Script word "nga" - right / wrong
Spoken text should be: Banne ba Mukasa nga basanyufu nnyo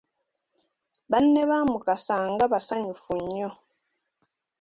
right